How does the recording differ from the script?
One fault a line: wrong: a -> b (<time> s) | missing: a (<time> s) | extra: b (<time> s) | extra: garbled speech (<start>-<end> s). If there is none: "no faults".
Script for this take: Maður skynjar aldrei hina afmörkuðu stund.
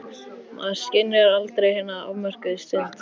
no faults